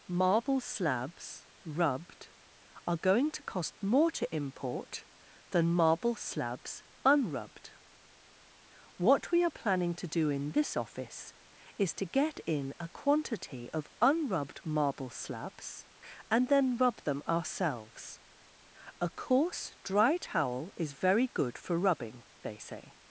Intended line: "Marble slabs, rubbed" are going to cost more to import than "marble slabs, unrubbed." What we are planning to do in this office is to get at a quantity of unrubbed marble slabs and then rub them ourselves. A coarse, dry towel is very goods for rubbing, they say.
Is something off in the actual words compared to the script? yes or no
yes